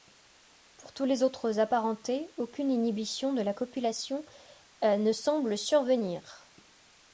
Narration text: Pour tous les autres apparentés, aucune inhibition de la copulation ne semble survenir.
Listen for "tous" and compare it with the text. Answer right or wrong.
right